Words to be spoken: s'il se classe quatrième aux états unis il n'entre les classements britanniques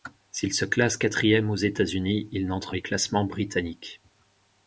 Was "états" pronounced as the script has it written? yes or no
yes